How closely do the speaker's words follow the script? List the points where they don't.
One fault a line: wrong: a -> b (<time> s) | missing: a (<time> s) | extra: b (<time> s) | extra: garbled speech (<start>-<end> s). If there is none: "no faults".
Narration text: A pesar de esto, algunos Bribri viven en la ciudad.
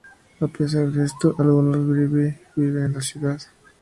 no faults